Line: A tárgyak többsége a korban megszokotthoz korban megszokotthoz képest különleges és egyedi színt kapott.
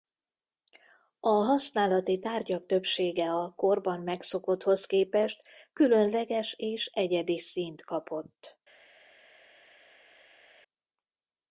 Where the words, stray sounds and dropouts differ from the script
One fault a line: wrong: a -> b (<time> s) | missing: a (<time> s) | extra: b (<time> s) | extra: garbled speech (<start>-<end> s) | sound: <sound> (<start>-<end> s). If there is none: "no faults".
extra: használati (1.3 s)
missing: korban megszokotthoz (4.9 s)